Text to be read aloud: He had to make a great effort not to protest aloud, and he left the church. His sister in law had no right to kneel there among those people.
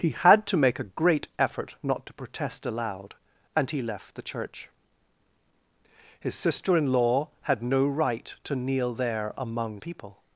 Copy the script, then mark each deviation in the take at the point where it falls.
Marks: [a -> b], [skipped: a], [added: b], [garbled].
He had to make a great effort not to protest aloud, and he left the church. His sister in law had no right to kneel there among [skipped: those] people.